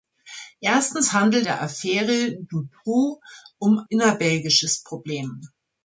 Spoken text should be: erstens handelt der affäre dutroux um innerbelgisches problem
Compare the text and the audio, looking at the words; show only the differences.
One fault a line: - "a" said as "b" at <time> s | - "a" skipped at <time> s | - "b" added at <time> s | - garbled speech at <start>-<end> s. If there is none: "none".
none